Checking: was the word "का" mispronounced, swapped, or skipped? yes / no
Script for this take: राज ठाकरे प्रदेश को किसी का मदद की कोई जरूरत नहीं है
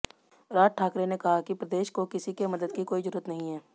yes